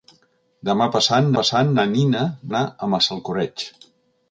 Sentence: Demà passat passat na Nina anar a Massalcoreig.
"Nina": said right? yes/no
yes